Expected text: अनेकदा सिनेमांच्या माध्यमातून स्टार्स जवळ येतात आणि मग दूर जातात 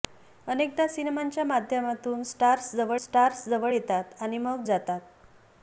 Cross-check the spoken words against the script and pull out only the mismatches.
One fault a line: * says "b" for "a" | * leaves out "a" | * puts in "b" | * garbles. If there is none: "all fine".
* puts in "स्टार्स जवळ"
* leaves out "दूर"